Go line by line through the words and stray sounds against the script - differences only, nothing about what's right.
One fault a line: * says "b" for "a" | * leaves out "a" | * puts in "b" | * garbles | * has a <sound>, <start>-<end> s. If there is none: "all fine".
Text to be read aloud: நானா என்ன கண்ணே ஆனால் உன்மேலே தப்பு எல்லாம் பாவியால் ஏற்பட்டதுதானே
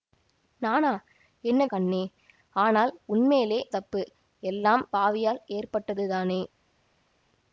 all fine